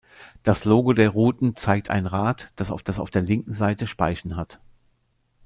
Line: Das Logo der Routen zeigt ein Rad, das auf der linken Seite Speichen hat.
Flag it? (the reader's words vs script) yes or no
yes